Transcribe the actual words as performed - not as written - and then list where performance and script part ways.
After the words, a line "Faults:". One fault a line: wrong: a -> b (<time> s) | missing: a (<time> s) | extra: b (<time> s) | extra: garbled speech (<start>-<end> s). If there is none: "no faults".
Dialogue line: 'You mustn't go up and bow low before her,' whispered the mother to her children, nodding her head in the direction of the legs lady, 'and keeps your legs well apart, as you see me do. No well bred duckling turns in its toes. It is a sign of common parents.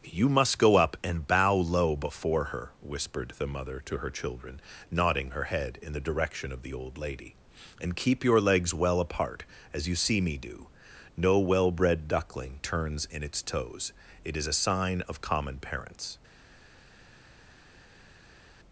'You must go up and bow low before her,' whispered the mother to her children, nodding her head in the direction of the old lady, 'and keep your legs well apart, as you see me do. No well bred duckling turns in its toes. It is a sign of common parents.
Faults:
wrong: mustn't -> must (0.3 s)
wrong: legs -> old (6.7 s)
wrong: keeps -> keep (8.0 s)